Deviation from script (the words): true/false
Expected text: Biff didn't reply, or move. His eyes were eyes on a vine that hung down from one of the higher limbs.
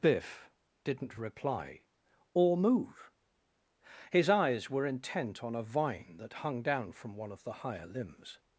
true